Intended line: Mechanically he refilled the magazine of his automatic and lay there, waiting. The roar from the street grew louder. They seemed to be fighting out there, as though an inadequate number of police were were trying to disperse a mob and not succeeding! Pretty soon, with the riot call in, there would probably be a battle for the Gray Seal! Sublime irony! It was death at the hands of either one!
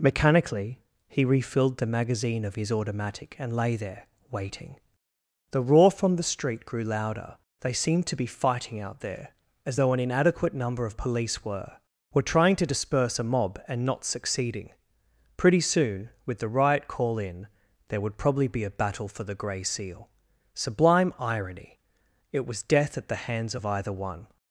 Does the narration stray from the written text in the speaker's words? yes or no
no